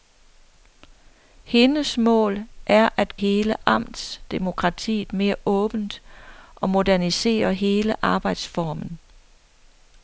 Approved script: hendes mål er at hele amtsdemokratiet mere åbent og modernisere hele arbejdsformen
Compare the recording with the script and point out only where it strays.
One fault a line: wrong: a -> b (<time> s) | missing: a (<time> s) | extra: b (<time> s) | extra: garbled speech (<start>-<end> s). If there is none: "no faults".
no faults